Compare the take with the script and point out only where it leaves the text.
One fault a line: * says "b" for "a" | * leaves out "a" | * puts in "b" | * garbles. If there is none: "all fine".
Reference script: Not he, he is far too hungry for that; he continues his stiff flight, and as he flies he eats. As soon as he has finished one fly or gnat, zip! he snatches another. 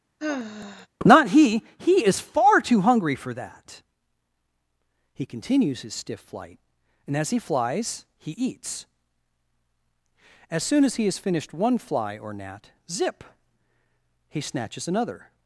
all fine